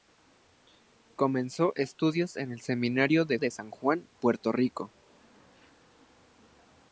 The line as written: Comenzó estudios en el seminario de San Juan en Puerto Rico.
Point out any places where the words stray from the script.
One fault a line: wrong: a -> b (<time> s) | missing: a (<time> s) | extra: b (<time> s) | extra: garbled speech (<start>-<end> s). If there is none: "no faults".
extra: de (3.4 s)
missing: en (4.1 s)